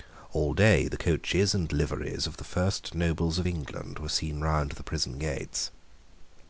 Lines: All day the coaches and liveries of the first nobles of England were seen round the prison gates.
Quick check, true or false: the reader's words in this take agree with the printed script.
true